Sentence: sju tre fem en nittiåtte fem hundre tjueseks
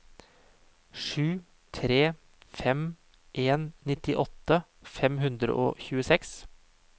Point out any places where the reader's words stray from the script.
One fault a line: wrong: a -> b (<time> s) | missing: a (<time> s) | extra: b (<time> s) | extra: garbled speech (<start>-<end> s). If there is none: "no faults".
extra: og (5.7 s)